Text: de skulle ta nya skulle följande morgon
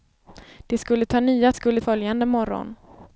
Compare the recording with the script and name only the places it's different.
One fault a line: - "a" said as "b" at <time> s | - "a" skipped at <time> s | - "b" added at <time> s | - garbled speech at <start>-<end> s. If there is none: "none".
none